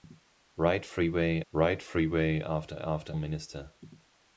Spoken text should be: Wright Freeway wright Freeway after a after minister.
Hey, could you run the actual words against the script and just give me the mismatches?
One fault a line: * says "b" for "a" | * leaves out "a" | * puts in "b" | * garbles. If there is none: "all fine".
all fine